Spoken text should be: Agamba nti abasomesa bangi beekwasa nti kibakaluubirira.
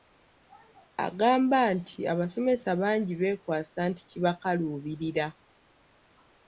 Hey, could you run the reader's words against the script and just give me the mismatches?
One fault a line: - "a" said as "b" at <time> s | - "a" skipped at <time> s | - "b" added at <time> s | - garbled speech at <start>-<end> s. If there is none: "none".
none